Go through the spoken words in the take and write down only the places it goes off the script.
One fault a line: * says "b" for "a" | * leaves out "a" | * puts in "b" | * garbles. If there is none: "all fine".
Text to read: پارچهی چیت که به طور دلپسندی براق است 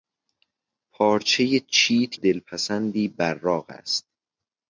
* leaves out "که به طور"